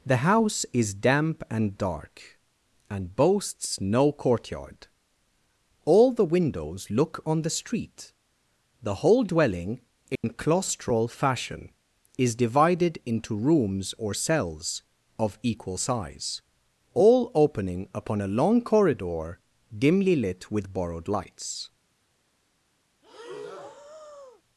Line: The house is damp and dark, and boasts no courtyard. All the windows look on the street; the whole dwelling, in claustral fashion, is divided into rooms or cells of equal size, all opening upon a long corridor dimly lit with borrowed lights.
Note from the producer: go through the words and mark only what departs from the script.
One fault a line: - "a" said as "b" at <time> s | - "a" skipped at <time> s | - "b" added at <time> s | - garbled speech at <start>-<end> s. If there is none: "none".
none